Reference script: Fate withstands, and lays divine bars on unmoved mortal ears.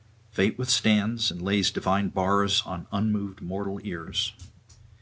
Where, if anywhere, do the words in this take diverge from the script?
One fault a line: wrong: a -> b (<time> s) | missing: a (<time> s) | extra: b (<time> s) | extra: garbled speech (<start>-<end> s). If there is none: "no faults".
no faults